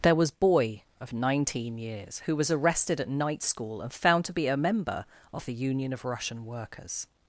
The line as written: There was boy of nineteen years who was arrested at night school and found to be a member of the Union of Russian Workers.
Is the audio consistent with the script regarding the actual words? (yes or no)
yes